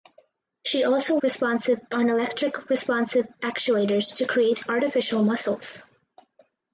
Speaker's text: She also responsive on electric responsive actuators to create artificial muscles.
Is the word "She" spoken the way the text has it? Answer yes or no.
yes